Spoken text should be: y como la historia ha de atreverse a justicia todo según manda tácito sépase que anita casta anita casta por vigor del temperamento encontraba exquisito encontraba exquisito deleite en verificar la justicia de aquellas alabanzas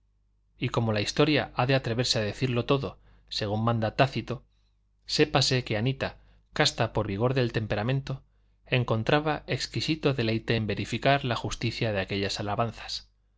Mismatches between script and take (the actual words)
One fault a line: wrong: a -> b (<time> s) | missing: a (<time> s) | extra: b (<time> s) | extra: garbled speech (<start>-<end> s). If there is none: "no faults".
wrong: justicia -> decirlo (2.2 s)
missing: anita casta (6.9 s)
missing: encontraba exquisito (10.1 s)